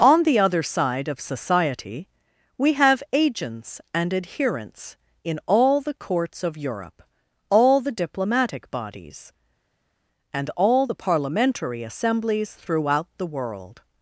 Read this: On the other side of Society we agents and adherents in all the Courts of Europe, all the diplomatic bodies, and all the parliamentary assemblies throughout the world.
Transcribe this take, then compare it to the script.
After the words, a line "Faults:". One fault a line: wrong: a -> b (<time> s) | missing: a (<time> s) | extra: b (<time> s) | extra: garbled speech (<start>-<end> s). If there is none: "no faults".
On the other side of Society we have agents and adherents in all the Courts of Europe, all the diplomatic bodies, and all the parliamentary assemblies throughout the world.
Faults:
extra: have (2.7 s)